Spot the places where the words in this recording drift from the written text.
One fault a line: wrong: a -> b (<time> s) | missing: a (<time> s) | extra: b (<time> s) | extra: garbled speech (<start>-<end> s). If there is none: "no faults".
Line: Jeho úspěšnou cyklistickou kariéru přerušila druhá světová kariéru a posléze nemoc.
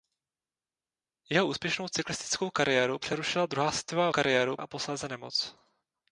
no faults